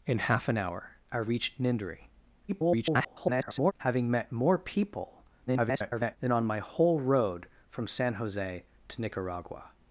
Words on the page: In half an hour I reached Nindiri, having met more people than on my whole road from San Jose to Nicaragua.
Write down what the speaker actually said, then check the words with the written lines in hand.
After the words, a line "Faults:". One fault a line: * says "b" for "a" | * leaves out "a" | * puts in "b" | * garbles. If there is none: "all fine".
In half an hour I reached Nindiri, [garbled] having met more people [garbled] than on my whole road from San Jose to Nicaragua.
Faults:
* garbles
* garbles